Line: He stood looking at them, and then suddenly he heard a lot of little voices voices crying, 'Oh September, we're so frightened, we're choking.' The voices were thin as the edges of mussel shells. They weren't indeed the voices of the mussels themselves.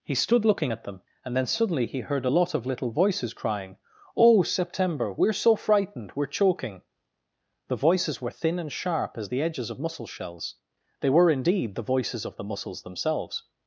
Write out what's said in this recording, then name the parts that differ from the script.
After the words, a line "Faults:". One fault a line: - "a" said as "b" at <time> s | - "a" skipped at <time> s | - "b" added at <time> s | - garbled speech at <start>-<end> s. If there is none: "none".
He stood looking at them, and then suddenly he heard a lot of little voices crying, 'Oh September, we're so frightened, we're choking.' The voices were thin and sharp as the edges of mussel shells. They were indeed the voices of the mussels themselves.
Faults:
- "voices" skipped at 3.3 s
- "and sharp" added at 8.6 s
- "weren't" said as "were" at 11.1 s